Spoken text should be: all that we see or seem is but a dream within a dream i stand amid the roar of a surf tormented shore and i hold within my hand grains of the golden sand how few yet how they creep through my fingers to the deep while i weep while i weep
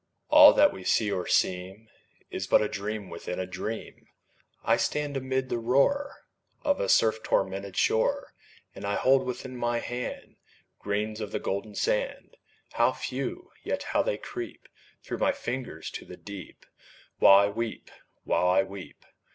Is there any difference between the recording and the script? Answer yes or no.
no